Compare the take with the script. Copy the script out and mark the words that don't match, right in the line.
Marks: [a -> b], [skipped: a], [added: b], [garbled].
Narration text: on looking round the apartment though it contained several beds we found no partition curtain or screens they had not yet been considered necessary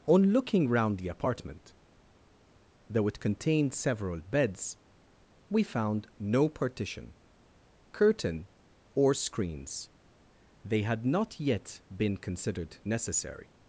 on looking round the apartment though it contained several beds we found no partition curtain or screens they had not yet been considered necessary